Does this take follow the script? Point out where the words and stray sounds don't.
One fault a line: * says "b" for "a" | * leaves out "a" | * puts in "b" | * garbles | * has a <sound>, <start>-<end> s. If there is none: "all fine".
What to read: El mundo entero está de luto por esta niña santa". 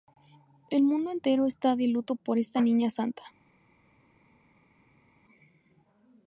all fine